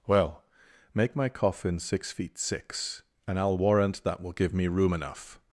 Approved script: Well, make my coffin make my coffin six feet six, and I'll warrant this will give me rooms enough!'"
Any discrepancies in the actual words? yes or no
yes